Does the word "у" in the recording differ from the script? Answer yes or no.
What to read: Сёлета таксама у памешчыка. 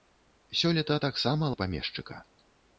no